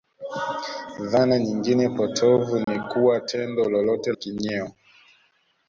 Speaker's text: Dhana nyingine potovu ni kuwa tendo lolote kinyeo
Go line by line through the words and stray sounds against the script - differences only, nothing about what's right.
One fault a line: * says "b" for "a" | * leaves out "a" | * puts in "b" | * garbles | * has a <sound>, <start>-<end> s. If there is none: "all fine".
* has a dropout, 2.6-2.7 s